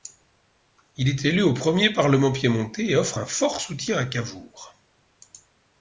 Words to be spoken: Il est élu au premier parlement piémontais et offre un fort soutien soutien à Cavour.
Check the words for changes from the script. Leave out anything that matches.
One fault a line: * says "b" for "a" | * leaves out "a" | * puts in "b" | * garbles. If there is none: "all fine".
* leaves out "soutien"